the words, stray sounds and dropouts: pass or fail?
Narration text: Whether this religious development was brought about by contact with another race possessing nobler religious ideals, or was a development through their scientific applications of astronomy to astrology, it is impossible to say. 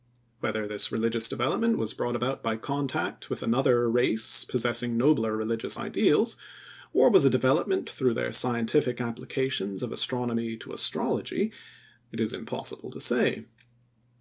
pass